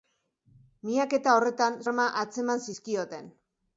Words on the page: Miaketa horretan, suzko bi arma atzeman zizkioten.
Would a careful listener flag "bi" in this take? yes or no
yes